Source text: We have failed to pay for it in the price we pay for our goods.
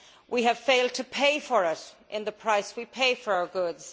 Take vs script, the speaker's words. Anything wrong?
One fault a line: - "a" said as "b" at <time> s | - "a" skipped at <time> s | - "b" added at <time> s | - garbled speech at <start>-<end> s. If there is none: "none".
none